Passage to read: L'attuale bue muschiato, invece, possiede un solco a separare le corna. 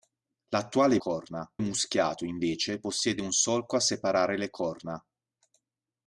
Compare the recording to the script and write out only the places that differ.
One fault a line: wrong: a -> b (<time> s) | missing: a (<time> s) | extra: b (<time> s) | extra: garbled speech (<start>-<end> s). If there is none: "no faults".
wrong: bue -> corna (1.0 s)